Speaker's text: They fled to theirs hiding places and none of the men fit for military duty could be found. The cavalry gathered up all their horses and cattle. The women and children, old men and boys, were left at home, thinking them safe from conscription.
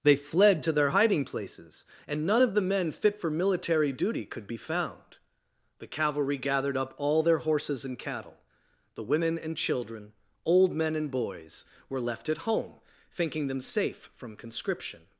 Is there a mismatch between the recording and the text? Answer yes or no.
yes